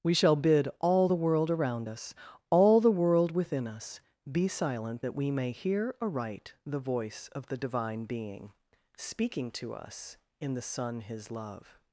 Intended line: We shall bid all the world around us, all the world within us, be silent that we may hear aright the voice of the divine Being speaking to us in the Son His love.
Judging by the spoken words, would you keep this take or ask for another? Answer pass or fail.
pass